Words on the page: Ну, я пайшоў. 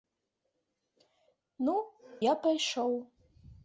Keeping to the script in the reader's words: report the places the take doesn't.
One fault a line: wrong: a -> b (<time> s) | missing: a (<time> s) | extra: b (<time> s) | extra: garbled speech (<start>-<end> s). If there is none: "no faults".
no faults